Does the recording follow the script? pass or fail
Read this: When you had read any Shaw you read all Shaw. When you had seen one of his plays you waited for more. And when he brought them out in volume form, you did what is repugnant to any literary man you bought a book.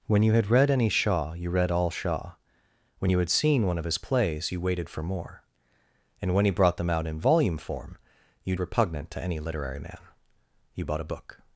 fail